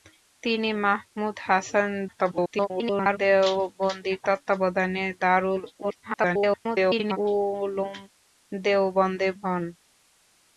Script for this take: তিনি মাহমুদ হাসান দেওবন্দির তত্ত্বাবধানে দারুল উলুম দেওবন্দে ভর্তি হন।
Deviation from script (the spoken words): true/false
true